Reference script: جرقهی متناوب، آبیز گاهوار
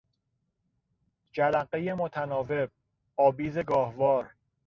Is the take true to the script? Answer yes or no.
yes